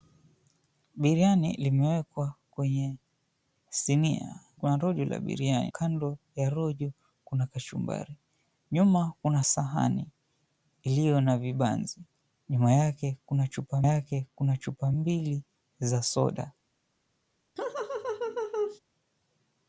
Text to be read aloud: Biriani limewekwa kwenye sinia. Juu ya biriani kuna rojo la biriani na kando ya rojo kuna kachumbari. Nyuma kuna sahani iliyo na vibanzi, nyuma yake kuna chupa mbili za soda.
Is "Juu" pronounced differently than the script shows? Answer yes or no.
yes